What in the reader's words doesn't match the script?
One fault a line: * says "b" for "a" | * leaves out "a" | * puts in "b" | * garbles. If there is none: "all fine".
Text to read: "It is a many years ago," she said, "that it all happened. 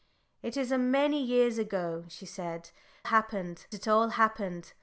* says "happened" for "that"